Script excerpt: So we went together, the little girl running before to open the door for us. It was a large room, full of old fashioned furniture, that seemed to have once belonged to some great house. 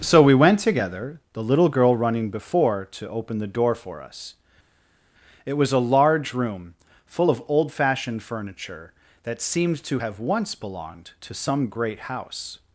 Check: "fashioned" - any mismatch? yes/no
no